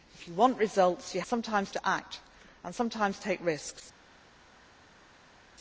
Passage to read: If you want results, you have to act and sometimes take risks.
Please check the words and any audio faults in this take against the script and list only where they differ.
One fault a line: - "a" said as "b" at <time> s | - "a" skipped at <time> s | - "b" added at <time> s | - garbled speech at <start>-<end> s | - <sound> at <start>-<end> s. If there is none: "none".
- "have" said as "sometimes" at 1.2 s